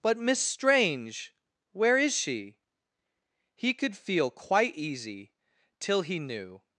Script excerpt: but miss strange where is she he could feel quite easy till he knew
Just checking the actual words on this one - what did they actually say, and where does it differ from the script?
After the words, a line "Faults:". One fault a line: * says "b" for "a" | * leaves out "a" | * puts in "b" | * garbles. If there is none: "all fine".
but miss strange where is she he could feel quite easy till he knew
Faults:
all fine